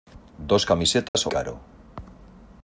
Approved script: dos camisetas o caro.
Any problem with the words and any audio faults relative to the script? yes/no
yes